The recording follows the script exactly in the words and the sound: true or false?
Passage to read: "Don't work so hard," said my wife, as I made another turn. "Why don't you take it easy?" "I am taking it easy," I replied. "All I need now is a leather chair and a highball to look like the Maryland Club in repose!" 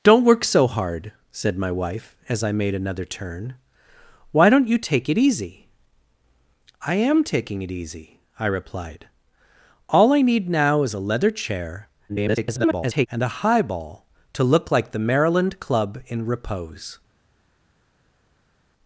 false